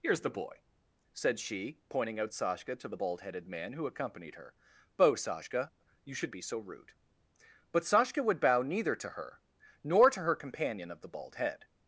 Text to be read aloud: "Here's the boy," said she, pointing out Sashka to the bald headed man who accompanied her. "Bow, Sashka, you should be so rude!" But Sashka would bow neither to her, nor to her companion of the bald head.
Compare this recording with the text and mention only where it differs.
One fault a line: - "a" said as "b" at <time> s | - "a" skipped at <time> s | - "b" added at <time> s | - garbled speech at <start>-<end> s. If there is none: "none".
none